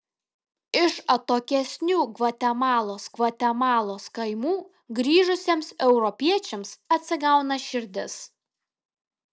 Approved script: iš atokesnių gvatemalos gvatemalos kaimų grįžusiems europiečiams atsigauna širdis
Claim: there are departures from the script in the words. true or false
false